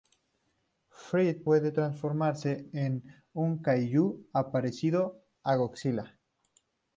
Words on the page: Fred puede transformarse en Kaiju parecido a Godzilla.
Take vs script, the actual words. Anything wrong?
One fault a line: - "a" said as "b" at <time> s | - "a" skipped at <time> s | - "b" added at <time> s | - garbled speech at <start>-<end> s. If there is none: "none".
- "un" added at 3.3 s